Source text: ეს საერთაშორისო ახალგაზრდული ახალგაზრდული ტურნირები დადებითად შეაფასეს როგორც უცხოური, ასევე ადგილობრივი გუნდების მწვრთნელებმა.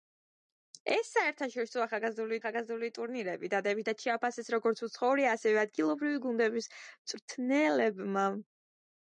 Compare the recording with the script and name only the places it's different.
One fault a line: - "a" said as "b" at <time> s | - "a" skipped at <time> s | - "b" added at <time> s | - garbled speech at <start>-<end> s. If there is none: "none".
none